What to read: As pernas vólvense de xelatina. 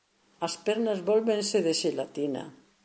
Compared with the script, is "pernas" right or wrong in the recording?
right